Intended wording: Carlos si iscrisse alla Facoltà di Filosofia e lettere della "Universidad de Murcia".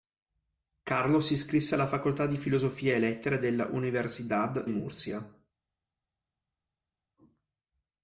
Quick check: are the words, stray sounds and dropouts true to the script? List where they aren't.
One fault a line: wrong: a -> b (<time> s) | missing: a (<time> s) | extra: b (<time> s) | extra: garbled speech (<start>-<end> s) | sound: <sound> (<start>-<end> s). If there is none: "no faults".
missing: de (4.7 s)